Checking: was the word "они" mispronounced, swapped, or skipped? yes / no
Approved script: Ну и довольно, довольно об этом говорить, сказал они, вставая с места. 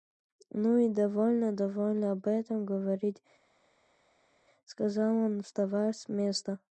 yes